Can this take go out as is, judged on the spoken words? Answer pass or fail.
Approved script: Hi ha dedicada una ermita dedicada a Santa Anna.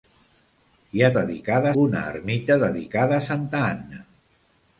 pass